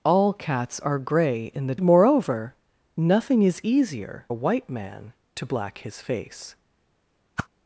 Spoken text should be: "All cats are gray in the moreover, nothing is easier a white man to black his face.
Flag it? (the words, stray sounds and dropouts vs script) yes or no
yes